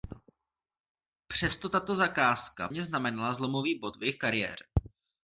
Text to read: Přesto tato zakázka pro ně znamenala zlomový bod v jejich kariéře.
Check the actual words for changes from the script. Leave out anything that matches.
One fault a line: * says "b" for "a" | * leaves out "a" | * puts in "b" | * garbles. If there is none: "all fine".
* leaves out "pro"